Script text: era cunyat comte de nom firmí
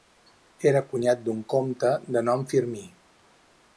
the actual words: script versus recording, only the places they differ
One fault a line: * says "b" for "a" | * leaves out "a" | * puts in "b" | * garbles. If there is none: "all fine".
* puts in "d'un"